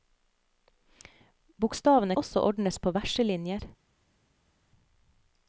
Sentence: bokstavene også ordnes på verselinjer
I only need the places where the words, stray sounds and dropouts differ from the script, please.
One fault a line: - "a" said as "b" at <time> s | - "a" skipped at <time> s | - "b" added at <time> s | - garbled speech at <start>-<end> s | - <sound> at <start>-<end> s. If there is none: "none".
none